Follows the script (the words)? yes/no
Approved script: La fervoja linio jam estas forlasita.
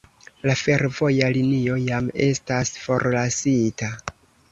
yes